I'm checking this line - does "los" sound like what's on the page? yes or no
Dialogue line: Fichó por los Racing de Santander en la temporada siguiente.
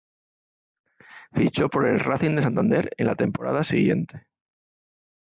no